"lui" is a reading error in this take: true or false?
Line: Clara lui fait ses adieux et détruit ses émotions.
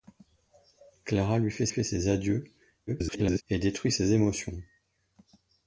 false